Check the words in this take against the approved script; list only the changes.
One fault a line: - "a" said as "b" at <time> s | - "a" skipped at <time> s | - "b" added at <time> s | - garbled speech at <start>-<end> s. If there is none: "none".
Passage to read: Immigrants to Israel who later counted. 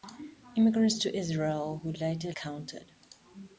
none